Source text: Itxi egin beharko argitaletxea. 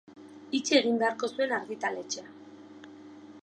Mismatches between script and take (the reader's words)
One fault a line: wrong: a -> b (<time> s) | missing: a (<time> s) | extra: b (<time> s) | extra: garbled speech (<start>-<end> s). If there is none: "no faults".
extra: zuen (1.3 s)